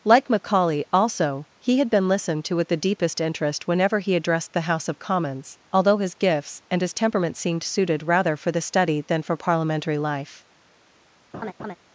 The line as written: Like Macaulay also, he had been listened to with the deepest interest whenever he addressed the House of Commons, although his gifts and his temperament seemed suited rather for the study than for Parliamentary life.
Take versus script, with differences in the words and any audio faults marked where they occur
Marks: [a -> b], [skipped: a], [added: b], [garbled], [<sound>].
Like Macaulay also, he had been listened to with the deepest interest whenever he addressed the House of Commons, although his gifts and his temperament seemed suited rather for the study than for Parliamentary life. [laugh]